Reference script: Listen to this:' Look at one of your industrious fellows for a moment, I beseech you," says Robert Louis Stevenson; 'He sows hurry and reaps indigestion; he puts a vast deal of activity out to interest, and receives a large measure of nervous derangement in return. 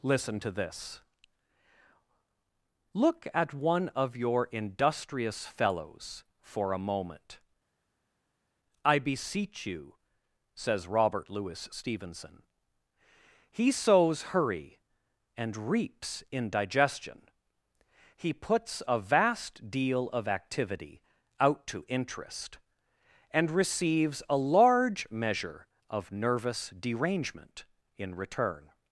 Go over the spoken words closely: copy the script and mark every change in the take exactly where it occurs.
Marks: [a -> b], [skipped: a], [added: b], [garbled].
Listen to this:' Look at one of your industrious fellows for a moment, I beseech you," says Robert Louis Stevenson; 'He sows hurry and reaps indigestion; he puts a vast deal of activity out to interest, and receives a large measure of nervous derangement in return.